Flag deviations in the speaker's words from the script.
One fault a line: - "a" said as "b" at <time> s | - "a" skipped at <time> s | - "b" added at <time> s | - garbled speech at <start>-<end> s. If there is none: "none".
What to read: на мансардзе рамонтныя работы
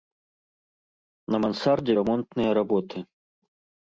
none